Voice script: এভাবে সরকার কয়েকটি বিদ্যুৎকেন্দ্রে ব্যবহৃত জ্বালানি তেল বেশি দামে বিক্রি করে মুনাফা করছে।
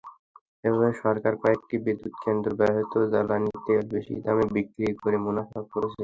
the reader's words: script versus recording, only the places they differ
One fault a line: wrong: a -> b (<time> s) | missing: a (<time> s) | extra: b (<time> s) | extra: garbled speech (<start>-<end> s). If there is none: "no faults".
no faults